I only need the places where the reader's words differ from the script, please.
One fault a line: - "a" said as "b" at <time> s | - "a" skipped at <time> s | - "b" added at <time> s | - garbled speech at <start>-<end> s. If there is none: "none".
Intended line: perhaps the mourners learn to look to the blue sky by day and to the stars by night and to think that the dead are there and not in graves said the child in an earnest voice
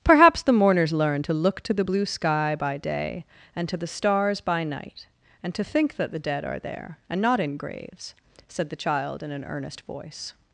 none